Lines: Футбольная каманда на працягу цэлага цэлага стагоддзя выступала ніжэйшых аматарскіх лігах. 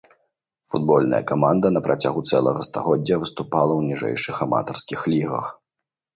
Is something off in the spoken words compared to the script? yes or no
yes